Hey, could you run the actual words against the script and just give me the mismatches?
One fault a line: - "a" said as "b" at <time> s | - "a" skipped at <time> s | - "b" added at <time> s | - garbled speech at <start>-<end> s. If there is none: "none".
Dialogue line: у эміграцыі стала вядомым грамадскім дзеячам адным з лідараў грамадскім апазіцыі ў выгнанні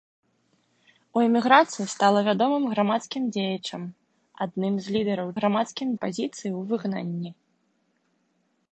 none